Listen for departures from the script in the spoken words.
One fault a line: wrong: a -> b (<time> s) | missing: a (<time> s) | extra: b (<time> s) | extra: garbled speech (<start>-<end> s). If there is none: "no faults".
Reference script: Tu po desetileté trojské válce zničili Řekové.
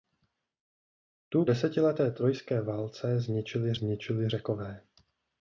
missing: po (1.4 s)
extra: zničili (3.7 s)